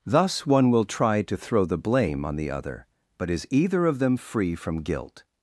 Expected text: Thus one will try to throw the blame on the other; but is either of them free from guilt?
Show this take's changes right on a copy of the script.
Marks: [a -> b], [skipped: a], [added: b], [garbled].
Thus one will try to throw the blame on the other; but is either of them free from guilt?